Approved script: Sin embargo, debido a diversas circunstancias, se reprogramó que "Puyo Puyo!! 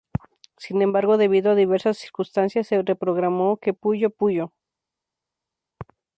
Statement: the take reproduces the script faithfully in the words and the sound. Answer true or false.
true